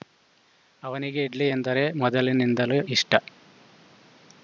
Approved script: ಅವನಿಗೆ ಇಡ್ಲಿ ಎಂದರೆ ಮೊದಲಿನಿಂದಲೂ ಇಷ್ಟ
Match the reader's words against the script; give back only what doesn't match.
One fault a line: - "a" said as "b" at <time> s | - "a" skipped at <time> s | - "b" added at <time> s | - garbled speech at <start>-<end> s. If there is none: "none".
none